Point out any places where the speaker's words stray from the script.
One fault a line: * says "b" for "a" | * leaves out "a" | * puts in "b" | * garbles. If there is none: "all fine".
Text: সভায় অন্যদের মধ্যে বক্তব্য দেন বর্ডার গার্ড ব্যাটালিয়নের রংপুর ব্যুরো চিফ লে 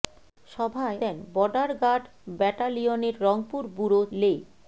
* leaves out "অন্যদের মধ্যে বক্তব্য"
* leaves out "চিফ"